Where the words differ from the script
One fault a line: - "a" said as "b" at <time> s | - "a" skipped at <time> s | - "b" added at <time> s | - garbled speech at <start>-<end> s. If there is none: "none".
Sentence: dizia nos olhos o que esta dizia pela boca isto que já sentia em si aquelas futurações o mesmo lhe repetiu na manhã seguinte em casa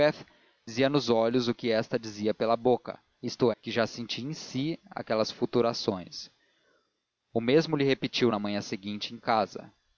none